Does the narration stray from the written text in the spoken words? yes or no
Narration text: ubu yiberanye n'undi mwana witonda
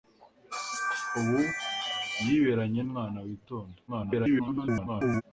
yes